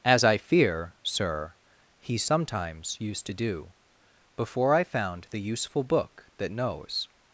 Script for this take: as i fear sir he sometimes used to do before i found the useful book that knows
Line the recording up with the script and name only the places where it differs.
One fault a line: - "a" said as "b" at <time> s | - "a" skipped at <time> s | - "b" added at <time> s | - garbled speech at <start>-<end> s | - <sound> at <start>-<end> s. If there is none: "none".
none